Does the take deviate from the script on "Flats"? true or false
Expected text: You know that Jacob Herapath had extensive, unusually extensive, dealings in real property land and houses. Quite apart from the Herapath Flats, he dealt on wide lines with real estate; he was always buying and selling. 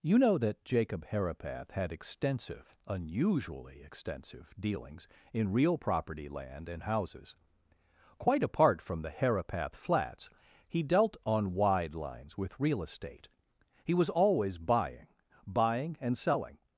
false